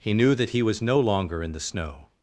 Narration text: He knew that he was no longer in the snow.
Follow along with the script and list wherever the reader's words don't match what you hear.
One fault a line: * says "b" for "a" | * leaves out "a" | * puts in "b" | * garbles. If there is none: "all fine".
all fine